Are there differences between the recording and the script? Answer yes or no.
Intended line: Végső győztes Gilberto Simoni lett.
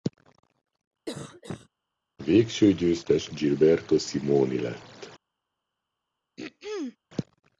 no